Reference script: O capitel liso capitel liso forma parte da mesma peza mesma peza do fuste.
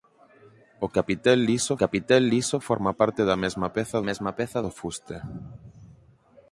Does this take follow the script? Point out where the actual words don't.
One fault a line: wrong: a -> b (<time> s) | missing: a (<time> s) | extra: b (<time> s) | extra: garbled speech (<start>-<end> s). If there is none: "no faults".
no faults